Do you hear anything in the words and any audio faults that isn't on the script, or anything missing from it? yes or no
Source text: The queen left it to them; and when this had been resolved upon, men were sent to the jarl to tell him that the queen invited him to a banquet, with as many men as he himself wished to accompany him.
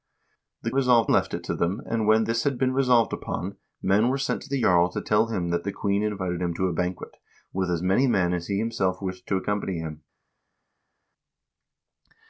yes